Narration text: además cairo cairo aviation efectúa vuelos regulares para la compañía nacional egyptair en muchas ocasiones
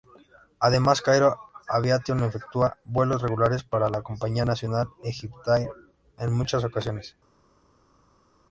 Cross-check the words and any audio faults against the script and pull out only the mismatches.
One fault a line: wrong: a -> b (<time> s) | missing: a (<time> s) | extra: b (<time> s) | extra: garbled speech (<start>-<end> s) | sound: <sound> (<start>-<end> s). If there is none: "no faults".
missing: cairo (1.4 s)